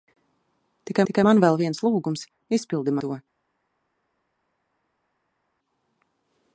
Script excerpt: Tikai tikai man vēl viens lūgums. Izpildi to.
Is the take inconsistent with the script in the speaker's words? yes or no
no